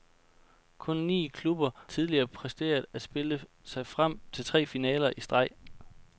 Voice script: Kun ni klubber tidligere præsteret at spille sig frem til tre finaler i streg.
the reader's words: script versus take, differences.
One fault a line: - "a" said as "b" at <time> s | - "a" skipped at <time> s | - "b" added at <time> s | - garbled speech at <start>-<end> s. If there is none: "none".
none